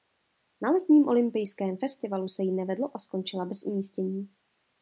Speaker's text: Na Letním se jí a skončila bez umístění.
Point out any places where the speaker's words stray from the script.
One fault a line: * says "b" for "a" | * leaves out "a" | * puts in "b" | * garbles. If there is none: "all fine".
* puts in "olympijském festivalu"
* puts in "nevedlo"